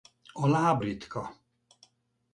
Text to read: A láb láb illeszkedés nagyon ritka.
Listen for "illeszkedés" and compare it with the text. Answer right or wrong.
wrong